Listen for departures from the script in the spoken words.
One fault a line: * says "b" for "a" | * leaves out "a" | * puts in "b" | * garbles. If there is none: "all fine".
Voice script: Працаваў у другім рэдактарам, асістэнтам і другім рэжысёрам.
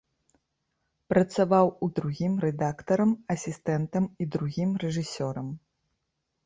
all fine